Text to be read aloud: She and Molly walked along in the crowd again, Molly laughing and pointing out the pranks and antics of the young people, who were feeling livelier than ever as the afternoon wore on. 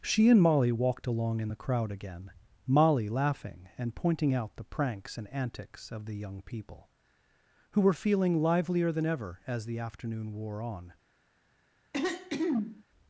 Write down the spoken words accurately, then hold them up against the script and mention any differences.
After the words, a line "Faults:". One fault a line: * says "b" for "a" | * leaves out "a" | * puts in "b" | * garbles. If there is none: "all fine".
She and Molly walked along in the crowd again, Molly laughing and pointing out the pranks and antics of the young people, who were feeling livelier than ever as the afternoon wore on.
Faults:
all fine